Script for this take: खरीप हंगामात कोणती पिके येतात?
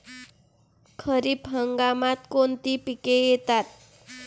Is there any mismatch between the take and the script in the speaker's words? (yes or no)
no